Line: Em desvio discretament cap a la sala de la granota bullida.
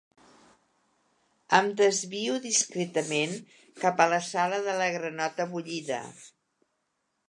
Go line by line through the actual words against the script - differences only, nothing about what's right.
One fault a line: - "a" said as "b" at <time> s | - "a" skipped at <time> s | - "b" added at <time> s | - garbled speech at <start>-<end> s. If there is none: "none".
none